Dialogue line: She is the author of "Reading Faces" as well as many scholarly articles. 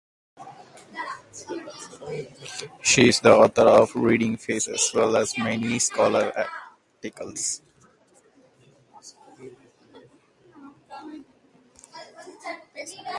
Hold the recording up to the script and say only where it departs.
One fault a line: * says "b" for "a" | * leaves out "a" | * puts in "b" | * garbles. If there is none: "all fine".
all fine